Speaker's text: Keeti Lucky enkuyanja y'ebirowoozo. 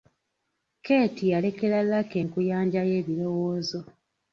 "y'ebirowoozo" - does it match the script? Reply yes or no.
yes